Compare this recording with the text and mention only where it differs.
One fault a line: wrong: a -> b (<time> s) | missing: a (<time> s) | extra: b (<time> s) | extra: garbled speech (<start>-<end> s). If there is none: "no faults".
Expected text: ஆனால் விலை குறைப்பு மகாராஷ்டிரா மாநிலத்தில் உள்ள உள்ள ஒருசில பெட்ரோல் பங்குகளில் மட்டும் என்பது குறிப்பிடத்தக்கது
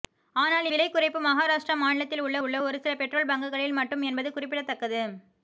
no faults